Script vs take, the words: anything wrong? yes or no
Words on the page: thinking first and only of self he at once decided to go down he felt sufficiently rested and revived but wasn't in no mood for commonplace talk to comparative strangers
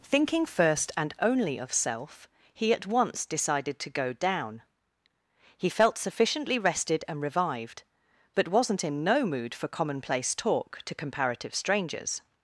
no